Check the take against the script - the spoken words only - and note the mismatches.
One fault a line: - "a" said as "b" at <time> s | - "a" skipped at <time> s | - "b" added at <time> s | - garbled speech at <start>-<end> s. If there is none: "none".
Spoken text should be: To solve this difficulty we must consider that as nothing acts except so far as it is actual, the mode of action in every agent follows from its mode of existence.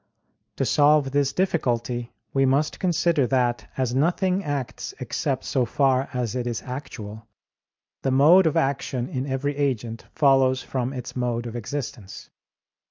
none